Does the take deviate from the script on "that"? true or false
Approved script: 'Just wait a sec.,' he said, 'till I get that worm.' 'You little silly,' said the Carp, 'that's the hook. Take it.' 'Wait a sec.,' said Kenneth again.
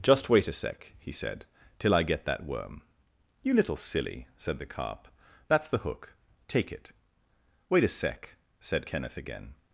false